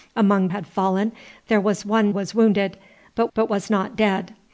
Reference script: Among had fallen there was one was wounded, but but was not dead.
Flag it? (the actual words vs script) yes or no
no